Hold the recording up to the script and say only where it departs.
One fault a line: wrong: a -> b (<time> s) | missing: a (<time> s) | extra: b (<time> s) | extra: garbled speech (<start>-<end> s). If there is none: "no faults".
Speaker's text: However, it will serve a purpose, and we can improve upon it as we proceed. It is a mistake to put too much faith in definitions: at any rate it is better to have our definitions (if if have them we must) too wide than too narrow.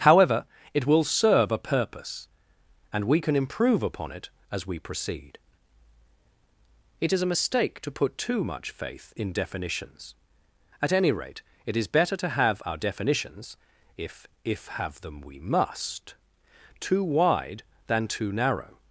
no faults